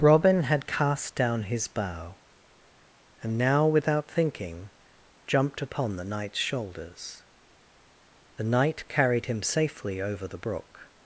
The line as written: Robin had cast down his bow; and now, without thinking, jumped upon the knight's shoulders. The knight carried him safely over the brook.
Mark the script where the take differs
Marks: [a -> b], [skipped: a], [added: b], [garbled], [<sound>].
Robin had cast down his bow; and now, without thinking, jumped upon the knight's shoulders. The knight carried him safely over the brook.